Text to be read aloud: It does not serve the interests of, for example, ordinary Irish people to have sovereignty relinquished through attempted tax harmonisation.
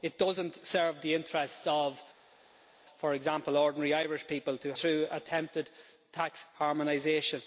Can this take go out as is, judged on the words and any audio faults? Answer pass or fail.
fail